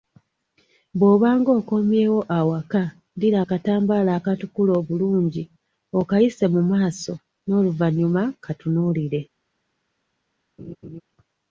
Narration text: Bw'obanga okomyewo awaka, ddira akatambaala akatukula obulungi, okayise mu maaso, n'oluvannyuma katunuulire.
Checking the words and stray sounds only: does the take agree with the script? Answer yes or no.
no